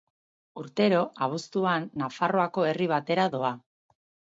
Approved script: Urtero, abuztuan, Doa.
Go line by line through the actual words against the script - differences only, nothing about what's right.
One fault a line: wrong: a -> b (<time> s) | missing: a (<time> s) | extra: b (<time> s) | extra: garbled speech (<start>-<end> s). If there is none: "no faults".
extra: Nafarroako herri batera (2.0 s)